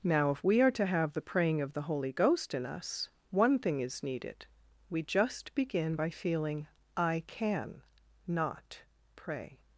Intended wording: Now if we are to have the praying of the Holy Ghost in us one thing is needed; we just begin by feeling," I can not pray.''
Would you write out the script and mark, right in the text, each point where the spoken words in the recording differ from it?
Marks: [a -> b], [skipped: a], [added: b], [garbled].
Now if we are to have the praying of the Holy Ghost in us one thing is needed; we just begin by feeling," I can not pray.''